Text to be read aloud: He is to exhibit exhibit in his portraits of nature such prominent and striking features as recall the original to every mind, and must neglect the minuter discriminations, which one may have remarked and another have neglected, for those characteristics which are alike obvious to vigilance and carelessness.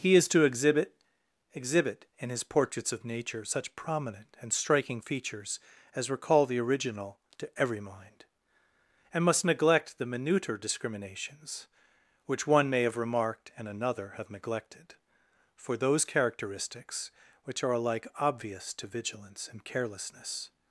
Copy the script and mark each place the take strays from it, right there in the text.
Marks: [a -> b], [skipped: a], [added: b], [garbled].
He is to exhibit exhibit in his portraits of nature such prominent and striking features as recall the original to every mind, and must neglect the minuter discriminations, which one may have remarked and another have neglected, for those characteristics which are alike obvious to vigilance and carelessness.